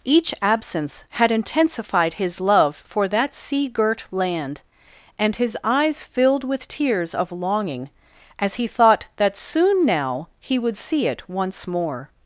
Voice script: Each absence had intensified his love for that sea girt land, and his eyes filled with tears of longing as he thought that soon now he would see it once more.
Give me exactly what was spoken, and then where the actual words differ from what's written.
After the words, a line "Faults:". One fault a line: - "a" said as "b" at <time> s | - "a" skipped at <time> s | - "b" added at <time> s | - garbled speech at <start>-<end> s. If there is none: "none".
Each absence had intensified his love for that sea girt land, and his eyes filled with tears of longing as he thought that soon now he would see it once more.
Faults:
none